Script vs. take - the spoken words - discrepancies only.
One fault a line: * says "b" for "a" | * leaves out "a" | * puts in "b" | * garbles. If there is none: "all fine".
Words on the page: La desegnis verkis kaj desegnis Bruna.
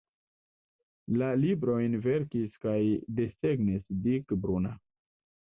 * says "librojn" for "desegnis"
* puts in "Dick"